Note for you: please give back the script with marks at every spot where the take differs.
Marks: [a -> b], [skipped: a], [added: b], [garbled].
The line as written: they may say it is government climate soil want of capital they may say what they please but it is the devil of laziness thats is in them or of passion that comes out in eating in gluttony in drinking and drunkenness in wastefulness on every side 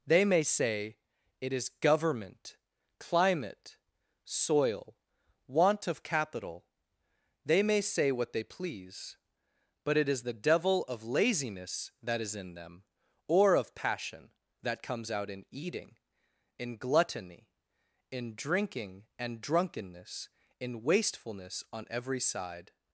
they may say it is government climate soil want of capital they may say what they please but it is the devil of laziness [thats -> that] is in them or of passion that comes out in eating in gluttony in drinking and drunkenness in wastefulness on every side